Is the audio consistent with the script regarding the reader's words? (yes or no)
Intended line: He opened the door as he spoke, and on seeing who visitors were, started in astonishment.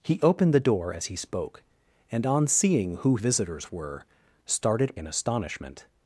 yes